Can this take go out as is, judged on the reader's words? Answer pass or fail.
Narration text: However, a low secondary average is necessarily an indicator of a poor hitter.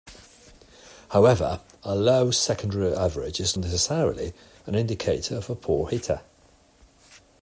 pass